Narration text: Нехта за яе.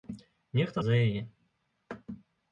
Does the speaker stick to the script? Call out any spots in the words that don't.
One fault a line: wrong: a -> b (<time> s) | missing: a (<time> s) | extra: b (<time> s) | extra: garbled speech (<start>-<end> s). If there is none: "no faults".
no faults